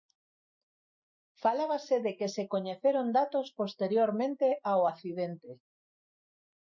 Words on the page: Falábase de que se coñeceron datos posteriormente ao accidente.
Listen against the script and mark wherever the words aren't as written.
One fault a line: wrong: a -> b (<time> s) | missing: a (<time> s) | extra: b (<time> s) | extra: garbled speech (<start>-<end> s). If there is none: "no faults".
no faults